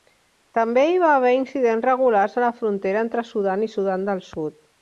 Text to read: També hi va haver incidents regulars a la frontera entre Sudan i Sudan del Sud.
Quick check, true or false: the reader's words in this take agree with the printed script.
true